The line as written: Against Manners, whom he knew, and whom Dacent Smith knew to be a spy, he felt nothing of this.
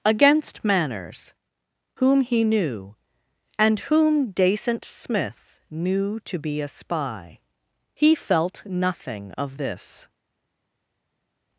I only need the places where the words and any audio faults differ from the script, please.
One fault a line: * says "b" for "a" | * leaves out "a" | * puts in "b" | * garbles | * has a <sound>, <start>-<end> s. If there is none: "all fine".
all fine